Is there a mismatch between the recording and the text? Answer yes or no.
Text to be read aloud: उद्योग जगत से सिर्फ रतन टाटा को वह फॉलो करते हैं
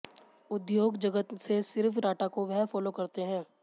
yes